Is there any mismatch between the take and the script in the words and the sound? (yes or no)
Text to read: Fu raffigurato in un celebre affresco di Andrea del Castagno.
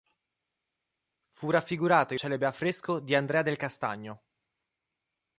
yes